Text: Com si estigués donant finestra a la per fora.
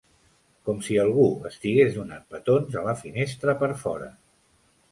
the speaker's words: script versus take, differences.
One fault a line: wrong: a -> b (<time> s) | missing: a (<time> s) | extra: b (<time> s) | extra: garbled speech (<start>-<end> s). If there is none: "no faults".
extra: algú (1.0 s)
wrong: finestra -> petons (2.3 s)
extra: finestra (3.0 s)